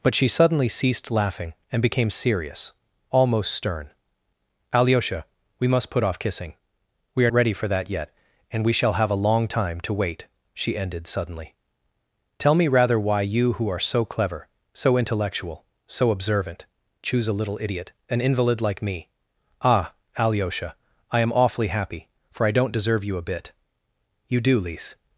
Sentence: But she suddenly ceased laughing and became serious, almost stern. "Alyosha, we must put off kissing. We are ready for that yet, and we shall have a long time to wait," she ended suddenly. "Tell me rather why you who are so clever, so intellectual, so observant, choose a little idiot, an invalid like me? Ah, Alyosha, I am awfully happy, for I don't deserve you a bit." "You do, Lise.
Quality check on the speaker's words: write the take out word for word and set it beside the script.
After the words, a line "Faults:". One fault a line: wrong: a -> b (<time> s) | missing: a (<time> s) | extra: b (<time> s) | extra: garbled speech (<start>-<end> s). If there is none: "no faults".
But she suddenly ceased laughing and became serious, almost stern. "Alyosha, we must put off kissing. We are ready for that yet, and we shall have a long time to wait," she ended suddenly. "Tell me rather why you who are so clever, so intellectual, so observant, choose a little idiot, an invalid like me? Ah, Alyosha, I am awfully happy, for I don't deserve you a bit." "You do, Lise.
Faults:
no faults